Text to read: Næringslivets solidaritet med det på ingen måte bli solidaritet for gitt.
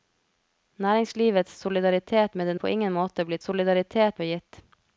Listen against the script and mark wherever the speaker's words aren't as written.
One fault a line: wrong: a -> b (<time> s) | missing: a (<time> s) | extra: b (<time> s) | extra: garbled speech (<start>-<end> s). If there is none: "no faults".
no faults